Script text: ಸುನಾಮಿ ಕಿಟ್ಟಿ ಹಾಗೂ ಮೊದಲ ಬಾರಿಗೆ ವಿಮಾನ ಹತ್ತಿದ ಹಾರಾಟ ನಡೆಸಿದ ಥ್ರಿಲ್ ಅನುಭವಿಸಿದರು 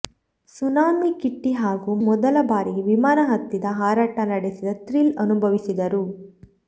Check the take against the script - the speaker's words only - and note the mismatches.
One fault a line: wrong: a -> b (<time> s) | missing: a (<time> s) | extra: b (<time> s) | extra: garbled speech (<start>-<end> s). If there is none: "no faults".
no faults